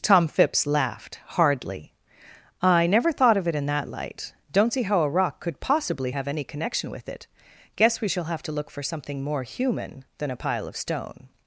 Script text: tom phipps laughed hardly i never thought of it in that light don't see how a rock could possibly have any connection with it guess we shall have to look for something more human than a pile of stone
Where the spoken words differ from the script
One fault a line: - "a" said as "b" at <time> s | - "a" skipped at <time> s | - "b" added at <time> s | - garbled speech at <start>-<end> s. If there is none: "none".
none